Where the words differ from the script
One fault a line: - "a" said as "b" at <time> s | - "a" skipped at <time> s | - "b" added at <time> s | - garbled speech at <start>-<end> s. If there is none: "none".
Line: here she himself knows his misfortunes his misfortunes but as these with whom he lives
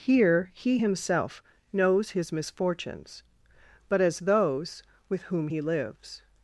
- "she" said as "he" at 0.6 s
- "his misfortunes" skipped at 3.2 s
- "these" said as "those" at 4.2 s